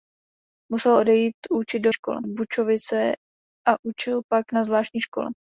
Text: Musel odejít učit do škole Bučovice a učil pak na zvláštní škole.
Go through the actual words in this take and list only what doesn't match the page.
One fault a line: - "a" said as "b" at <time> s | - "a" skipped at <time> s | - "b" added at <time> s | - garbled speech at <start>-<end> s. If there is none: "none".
none